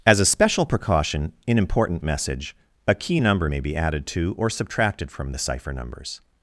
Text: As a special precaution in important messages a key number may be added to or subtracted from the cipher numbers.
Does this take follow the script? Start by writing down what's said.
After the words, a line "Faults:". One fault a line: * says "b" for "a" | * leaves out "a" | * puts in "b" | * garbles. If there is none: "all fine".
As a special precaution in important message a key number may be added to or subtracted from the cipher numbers.
Faults:
* says "message" for "messages"